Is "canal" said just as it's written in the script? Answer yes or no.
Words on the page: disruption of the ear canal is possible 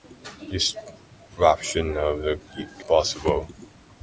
no